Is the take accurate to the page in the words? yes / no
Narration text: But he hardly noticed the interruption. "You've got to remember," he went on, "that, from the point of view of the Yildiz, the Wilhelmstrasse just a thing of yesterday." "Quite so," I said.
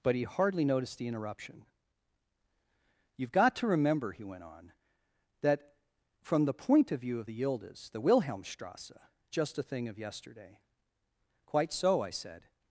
yes